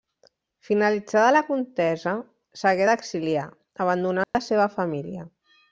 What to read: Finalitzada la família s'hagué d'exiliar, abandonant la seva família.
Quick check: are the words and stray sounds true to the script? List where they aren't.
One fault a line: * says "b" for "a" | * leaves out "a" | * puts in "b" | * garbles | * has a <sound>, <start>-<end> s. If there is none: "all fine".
* says "contesa" for "família"
* has a dropout, 4.2-4.3 s